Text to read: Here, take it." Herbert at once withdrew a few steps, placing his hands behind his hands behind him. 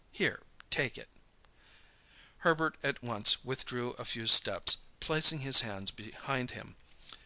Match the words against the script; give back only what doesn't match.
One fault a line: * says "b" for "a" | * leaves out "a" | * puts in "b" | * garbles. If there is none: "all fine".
* leaves out "his hands behind"